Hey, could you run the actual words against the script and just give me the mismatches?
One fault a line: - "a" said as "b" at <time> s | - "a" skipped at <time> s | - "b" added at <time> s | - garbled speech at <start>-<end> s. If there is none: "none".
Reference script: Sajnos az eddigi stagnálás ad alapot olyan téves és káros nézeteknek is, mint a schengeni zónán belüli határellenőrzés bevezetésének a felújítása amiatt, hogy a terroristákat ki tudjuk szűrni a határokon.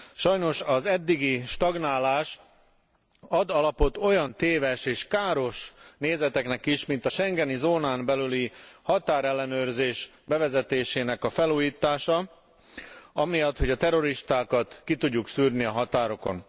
none